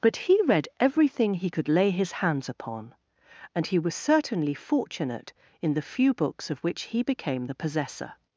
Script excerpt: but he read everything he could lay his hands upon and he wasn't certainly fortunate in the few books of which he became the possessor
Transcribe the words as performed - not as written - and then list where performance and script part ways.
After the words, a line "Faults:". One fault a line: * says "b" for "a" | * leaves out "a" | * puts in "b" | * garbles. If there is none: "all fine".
but he read everything he could lay his hands upon and he was certainly fortunate in the few books of which he became the possessor
Faults:
* says "was" for "wasn't"